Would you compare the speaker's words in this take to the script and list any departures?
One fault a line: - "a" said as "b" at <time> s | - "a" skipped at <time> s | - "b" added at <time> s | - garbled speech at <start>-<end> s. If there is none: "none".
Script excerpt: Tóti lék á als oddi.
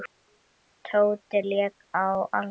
none